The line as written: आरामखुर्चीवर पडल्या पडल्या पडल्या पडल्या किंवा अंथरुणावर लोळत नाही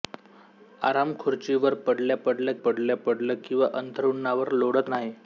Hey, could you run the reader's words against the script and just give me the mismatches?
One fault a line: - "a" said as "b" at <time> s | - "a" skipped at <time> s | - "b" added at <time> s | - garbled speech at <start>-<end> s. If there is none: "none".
none